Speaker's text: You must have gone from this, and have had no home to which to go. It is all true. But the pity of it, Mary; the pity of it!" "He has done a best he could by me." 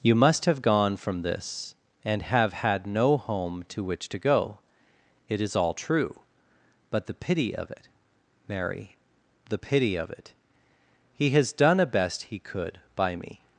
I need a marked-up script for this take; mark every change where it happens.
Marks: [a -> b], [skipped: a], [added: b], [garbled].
You must have gone from this, and have had no home to which to go. It is all true. But the pity of it, Mary; the pity of it!" "He has done a best he could by me."